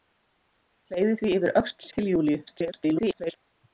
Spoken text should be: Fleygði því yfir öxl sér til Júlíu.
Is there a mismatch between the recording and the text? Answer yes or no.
yes